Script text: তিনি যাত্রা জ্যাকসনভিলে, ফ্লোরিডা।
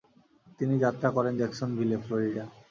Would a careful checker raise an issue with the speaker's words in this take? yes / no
yes